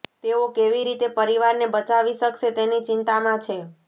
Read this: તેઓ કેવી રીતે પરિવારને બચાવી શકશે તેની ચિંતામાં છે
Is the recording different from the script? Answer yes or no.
no